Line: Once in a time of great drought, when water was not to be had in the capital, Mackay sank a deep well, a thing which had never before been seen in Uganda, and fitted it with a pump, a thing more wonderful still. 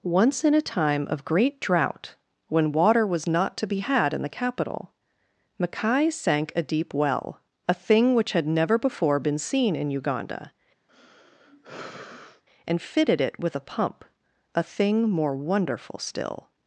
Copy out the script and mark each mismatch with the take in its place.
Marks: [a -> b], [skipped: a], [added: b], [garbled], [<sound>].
Once in a time of great drought, when water was not to be had in the capital, Mackay sank a deep well, a thing which had never before been seen in Uganda, [sigh] and fitted it with a pump, a thing more wonderful still.